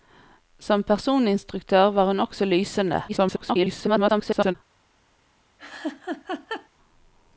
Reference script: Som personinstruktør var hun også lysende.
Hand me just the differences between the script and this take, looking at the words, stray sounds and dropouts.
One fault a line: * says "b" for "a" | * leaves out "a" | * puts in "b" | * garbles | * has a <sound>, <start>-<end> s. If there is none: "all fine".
* garbles
* has a laugh, 5.6-6.7 s